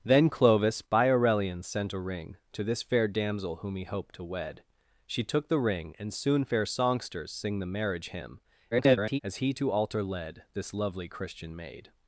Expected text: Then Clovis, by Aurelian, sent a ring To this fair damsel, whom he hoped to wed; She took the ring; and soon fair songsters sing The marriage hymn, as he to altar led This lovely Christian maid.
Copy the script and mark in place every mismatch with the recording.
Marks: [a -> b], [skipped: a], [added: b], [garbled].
Then Clovis, by Aurelian, sent a ring To this fair damsel, whom he hoped to wed; She took the ring; and soon fair songsters sing The marriage hymn, [garbled] as he to altar led This lovely Christian maid.